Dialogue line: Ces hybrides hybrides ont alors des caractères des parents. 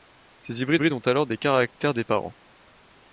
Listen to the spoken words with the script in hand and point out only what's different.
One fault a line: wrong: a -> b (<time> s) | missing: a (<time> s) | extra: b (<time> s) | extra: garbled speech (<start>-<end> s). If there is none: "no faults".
no faults